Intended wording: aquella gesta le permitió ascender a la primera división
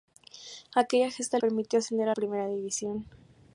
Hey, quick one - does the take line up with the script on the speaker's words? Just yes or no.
no